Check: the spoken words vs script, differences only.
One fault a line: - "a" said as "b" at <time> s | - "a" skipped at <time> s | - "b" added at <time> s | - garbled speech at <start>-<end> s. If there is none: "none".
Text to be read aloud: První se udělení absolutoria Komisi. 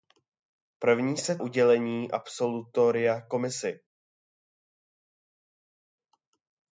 none